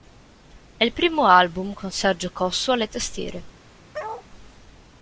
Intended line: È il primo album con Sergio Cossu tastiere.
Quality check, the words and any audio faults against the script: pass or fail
fail